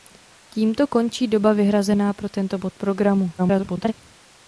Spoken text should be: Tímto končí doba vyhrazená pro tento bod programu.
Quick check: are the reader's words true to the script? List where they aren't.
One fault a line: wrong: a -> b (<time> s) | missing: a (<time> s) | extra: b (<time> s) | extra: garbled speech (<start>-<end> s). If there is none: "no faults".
extra: garbled speech (3.4-3.9 s)